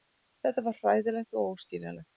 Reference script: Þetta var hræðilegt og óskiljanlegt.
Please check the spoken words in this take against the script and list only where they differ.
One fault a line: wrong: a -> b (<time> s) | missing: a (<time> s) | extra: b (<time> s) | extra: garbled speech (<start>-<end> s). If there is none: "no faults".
no faults